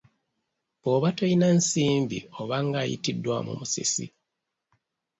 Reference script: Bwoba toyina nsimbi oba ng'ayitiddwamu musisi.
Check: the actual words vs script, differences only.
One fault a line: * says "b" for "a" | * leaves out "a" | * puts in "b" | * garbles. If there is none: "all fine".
all fine